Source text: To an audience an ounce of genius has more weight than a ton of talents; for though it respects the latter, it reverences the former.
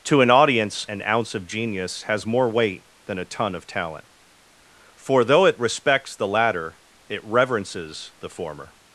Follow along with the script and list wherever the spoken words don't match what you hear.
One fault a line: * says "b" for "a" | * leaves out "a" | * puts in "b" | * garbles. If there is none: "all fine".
* says "talent" for "talents"